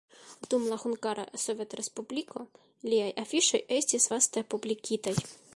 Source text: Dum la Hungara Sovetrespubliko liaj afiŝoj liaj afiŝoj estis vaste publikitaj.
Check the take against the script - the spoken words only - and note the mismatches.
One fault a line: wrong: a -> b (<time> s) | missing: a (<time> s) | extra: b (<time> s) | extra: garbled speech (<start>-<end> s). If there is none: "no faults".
missing: liaj afiŝoj (3.6 s)